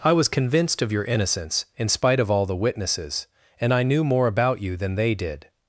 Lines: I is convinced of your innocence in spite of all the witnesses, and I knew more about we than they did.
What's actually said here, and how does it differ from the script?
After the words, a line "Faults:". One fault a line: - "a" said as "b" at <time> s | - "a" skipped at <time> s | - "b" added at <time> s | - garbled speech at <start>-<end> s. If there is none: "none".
I was convinced of your innocence in spite of all the witnesses, and I knew more about you than they did.
Faults:
- "is" said as "was" at 0.1 s
- "we" said as "you" at 4.6 s